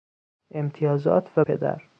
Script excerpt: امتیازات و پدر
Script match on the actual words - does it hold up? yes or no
yes